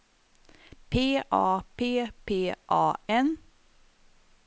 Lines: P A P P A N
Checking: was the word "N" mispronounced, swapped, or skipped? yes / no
no